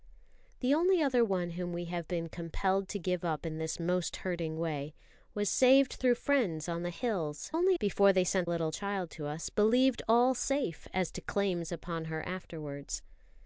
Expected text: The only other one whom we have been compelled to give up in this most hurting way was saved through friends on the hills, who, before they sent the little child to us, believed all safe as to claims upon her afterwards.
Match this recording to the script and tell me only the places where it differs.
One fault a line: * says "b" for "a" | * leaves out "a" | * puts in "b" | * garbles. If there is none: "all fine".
* says "only" for "who"
* leaves out "the"